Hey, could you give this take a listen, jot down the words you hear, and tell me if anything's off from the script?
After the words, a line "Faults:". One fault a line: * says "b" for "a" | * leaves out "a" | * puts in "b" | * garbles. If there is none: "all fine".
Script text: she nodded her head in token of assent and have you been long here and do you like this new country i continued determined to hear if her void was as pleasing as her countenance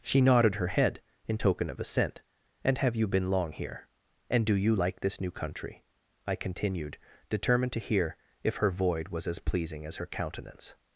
she nodded her head in token of assent and have you been long here and do you like this new country i continued determined to hear if her void was as pleasing as her countenance
Faults:
all fine